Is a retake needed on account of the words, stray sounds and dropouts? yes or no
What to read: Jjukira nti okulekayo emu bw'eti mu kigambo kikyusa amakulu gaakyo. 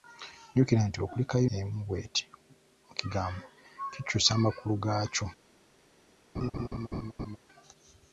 yes